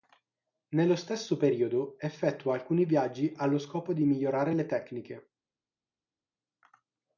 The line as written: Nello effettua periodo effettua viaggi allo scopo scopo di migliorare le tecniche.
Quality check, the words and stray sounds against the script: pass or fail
fail